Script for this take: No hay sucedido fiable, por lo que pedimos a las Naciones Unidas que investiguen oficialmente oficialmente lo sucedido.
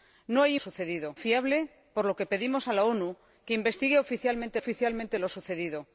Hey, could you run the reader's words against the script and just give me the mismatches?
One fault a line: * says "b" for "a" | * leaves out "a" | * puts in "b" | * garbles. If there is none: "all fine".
all fine